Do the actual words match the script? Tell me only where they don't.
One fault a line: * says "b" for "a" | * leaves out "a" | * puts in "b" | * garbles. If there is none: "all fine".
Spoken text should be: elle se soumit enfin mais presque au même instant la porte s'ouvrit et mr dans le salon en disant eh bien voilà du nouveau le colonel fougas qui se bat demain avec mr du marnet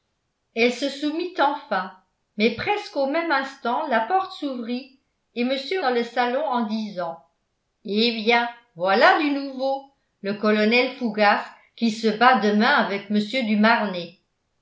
all fine